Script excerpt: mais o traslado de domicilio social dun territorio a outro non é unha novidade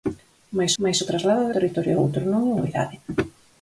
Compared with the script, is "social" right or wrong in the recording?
wrong